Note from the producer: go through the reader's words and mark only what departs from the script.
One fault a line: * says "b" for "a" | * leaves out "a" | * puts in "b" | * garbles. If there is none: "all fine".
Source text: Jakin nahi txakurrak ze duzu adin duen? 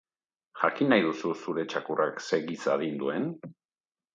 * puts in "duzu zure"
* says "giza" for "duzu"